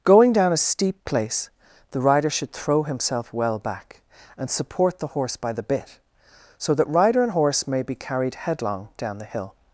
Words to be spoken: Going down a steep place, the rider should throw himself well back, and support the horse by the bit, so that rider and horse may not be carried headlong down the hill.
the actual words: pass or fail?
fail